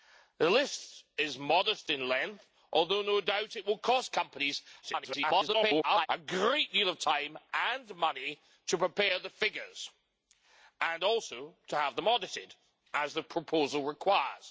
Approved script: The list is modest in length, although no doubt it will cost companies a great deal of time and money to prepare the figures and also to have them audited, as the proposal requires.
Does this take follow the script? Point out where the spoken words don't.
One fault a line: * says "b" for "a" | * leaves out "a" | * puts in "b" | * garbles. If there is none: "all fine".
* garbles